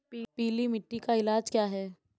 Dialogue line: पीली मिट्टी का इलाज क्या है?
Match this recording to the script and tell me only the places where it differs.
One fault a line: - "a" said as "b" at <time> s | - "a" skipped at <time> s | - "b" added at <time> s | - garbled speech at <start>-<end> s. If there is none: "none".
none